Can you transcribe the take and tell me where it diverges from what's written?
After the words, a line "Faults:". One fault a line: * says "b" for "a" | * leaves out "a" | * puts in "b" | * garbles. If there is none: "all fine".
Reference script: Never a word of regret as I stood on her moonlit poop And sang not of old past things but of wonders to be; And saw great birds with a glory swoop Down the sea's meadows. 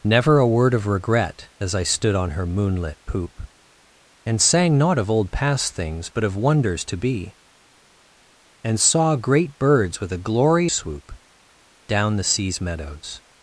Never a word of regret as I stood on her moonlit poop And sang not of old past things but of wonders to be; And saw great birds with a glory swoop Down the sea's meadows.
Faults:
all fine